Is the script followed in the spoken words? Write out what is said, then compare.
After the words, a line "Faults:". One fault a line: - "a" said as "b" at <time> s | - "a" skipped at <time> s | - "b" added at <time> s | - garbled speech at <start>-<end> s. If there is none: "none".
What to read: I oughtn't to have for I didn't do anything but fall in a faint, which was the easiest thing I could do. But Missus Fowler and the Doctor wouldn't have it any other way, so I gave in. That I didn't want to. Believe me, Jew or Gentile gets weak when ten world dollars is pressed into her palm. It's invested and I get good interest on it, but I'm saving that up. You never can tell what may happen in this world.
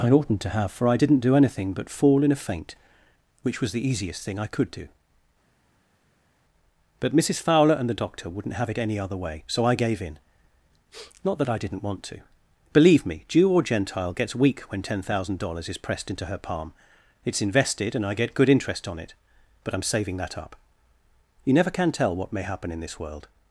I oughtn't to have for I didn't do anything but fall in a faint, which was the easiest thing I could do. But Missus Fowler and the Doctor wouldn't have it any other way, so I gave in. Not that I didn't want to. Believe me, Jew or Gentile gets weak when ten thousand dollars is pressed into her palm. It's invested and I get good interest on it, but I'm saving that up. You never can tell what may happen in this world.
Faults:
- "Not" added at 11.2 s
- "world" said as "thousand" at 15.0 s